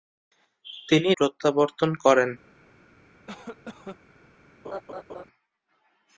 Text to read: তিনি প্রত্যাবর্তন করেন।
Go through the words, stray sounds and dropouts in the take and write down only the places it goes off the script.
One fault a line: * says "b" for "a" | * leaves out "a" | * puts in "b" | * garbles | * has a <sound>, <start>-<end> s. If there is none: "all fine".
* has a cough, 3.3-4.0 s
* has a laugh, 4.6-5.2 s